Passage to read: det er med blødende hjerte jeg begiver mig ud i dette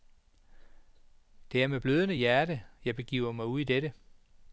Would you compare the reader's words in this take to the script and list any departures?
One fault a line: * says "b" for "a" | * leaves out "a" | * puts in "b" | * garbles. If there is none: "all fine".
all fine